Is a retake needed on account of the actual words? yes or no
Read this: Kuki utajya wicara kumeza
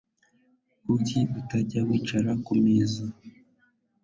no